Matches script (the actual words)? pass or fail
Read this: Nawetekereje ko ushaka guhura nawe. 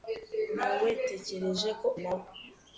fail